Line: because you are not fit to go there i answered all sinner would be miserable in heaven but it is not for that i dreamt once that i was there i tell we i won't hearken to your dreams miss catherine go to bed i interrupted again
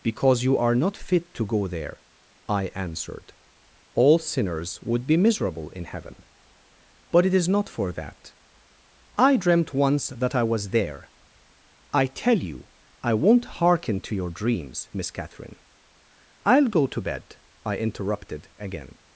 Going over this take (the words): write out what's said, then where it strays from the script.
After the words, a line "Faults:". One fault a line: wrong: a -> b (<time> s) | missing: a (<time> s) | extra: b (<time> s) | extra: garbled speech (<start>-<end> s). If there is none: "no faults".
because you are not fit to go there i answered all sinners would be miserable in heaven but it is not for that i dreamt once that i was there i tell you i won't hearken to your dreams miss catherine i'll go to bed i interrupted again
Faults:
wrong: sinner -> sinners (4.2 s)
wrong: we -> you (12.4 s)
extra: i'll (16.4 s)